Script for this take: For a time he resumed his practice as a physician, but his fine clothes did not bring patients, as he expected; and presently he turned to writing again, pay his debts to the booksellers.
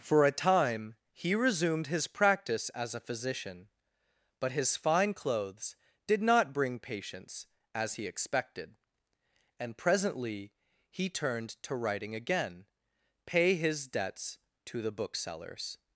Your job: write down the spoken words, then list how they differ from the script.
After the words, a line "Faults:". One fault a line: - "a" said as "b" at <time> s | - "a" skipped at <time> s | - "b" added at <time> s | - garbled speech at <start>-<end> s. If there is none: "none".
For a time he resumed his practice as a physician, but his fine clothes did not bring patients, as he expected; and presently he turned to writing again, pay his debts to the booksellers.
Faults:
none